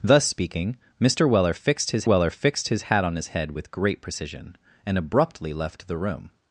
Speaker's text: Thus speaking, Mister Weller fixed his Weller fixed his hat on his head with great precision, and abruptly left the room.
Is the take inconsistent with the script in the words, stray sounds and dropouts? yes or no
no